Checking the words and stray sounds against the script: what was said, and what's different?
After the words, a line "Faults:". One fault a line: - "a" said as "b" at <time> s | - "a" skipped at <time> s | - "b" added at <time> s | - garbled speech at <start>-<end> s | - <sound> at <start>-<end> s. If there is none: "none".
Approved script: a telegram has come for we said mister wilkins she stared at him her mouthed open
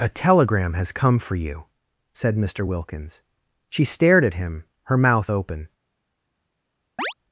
a telegram has come for you said mister wilkins she stared at him her mouth open
Faults:
- "we" said as "you" at 1.4 s
- "mouthed" said as "mouth" at 5.0 s
- chirp at 7.0-7.1 s